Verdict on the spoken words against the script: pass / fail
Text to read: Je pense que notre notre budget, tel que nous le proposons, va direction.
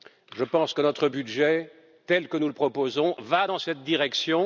fail